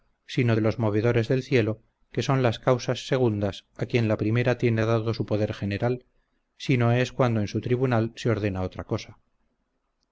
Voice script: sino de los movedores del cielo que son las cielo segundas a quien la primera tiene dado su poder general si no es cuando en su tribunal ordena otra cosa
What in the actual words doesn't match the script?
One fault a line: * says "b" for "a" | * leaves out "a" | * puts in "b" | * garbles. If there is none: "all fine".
* says "causas" for "cielo"
* puts in "se"